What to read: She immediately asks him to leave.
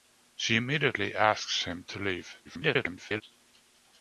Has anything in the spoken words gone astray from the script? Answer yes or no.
yes